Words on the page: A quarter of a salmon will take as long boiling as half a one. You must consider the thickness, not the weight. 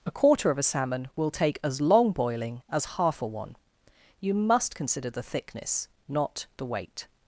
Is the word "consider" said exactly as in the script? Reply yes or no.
yes